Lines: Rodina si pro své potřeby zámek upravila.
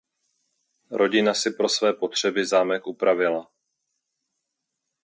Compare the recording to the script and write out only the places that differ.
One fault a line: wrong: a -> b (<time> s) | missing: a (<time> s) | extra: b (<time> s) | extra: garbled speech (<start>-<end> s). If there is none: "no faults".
no faults